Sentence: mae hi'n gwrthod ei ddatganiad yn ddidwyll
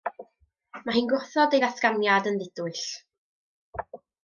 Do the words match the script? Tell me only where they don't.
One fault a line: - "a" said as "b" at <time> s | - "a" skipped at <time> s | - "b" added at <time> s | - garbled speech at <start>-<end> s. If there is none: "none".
none